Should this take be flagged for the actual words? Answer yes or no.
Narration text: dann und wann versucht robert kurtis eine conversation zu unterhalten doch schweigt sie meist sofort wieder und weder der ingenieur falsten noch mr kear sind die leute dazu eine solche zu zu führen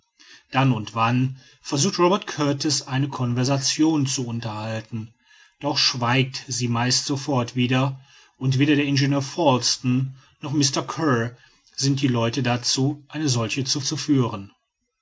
no